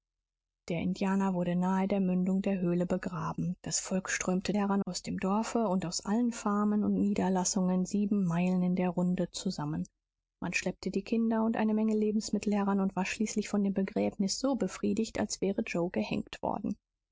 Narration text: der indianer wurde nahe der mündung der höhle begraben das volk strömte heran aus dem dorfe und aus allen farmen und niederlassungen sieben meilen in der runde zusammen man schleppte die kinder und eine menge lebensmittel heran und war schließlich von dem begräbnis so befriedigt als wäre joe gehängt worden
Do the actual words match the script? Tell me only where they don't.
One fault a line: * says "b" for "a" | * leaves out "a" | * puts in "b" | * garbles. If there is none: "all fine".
all fine